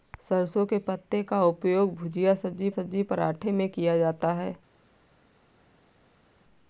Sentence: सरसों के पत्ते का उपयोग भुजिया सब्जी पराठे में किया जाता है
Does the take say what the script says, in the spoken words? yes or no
no